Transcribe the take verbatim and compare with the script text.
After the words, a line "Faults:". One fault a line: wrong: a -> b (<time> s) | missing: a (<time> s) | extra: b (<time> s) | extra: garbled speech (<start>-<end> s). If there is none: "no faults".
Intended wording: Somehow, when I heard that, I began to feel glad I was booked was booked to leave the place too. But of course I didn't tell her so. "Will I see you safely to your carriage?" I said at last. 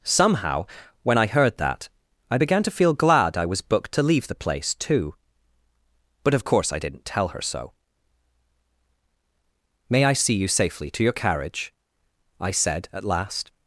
Somehow, when I heard that, I began to feel glad I was booked to leave the place too. But of course I didn't tell her so. "May I see you safely to your carriage?" I said at last.
Faults:
missing: was booked (3.9 s)
wrong: Will -> May (9.9 s)